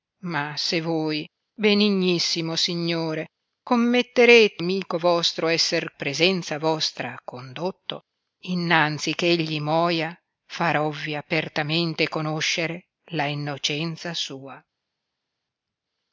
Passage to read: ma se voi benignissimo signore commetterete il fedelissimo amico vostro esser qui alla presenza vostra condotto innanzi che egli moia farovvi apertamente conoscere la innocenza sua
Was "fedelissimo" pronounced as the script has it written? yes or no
no